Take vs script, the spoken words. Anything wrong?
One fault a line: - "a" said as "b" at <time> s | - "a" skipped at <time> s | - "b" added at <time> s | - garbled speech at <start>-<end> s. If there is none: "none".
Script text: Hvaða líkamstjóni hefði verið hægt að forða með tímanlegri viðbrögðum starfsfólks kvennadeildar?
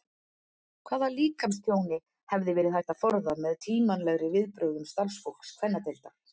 none